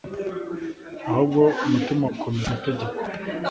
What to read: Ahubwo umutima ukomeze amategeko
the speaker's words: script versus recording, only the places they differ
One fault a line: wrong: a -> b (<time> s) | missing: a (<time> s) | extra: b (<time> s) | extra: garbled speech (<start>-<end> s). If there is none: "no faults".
no faults